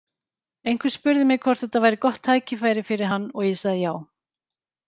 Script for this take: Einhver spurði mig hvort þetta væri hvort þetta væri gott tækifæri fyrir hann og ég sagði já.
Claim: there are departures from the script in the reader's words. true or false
true